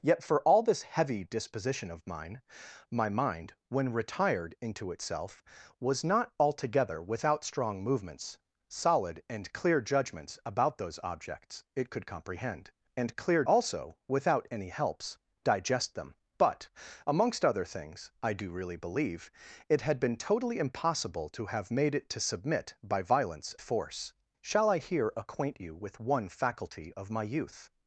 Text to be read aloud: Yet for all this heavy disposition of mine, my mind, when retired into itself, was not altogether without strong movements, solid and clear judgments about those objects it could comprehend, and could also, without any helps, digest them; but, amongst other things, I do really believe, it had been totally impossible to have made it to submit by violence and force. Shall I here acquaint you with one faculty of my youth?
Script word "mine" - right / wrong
right